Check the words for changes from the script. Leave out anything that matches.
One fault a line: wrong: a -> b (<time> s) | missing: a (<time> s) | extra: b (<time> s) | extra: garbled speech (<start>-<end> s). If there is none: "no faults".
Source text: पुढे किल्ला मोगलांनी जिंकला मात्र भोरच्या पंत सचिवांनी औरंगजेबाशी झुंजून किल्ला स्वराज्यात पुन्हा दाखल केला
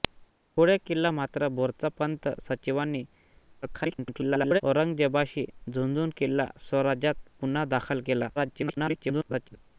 missing: मोगलांनी जिंकला (1.1 s)
extra: garbled speech (3.6-4.6 s)
extra: garbled speech (8.4-9.6 s)